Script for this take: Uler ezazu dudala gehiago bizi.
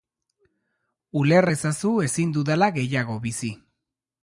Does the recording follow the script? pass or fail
fail